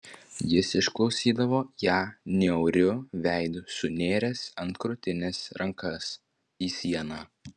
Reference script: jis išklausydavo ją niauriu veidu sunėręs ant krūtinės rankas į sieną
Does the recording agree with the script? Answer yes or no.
yes